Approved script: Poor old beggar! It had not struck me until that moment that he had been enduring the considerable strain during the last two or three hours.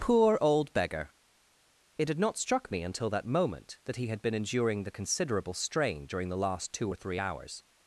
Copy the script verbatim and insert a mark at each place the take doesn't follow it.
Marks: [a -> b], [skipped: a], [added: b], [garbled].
Poor old beggar! It had not struck me until that moment that he had been enduring the considerable strain during the last two or three hours.